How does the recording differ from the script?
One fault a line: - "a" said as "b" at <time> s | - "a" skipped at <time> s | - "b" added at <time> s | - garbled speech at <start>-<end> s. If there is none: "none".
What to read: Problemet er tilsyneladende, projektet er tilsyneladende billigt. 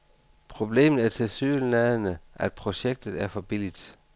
- "at" added at 2.4 s
- "tilsyneladende" said as "for" at 3.3 s